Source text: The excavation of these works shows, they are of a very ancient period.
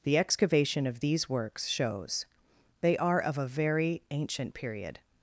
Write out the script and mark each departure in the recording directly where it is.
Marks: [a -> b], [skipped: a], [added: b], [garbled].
The excavation of these works shows, they are of a very ancient period.